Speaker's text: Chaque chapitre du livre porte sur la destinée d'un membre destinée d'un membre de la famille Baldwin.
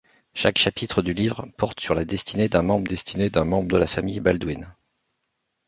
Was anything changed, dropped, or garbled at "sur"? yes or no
no